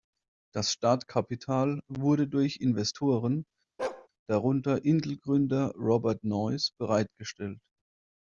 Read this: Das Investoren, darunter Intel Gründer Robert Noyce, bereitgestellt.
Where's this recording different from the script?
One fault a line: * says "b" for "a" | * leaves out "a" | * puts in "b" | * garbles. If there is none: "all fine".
* puts in "Startkapital wurde durch"